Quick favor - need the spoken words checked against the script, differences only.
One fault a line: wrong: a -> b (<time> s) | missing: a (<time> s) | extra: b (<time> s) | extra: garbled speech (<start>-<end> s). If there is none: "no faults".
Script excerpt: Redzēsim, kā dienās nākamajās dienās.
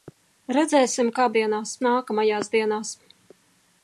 no faults